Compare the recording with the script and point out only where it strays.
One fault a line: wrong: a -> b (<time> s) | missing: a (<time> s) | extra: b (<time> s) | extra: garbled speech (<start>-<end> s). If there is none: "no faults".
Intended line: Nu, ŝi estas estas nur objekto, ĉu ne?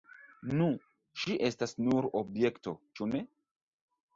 missing: estas (1.8 s)